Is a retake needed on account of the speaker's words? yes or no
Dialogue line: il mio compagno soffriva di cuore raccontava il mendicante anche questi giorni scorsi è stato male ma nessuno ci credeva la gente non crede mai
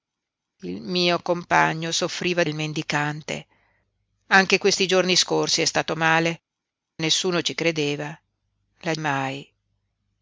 yes